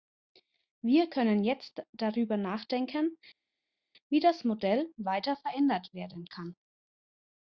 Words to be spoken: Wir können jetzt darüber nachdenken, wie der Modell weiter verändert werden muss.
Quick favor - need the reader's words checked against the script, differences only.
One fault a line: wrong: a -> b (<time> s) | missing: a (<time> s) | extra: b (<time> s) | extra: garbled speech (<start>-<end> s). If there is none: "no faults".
wrong: der -> das (4.2 s)
wrong: muss -> kann (6.2 s)